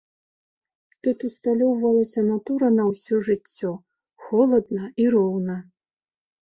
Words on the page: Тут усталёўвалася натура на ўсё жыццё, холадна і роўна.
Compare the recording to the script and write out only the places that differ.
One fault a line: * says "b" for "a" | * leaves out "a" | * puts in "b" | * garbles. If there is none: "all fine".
all fine